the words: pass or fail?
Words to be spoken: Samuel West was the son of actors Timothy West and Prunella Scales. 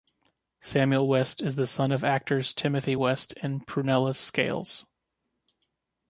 fail